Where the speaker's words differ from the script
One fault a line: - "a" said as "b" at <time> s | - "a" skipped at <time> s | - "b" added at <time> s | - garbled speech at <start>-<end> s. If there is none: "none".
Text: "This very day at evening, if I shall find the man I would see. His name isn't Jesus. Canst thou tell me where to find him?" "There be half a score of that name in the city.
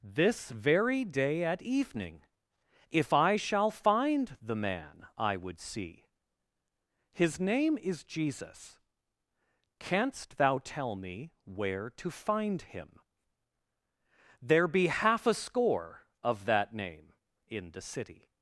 - "isn't" said as "is" at 7.8 s